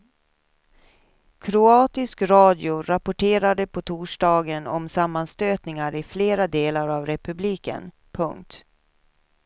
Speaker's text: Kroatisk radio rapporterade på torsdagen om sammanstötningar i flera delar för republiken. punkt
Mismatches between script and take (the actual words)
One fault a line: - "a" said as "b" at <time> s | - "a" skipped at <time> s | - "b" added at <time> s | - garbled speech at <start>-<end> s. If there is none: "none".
- "för" said as "av" at 6.9 s